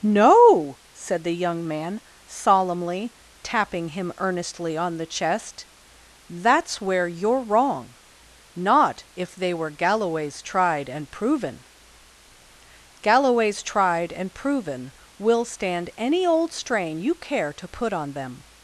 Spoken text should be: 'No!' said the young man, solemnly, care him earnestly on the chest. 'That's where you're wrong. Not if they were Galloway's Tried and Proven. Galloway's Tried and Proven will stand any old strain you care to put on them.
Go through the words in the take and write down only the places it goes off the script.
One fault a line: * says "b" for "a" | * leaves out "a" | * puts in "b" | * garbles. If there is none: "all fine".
* says "tapping" for "care"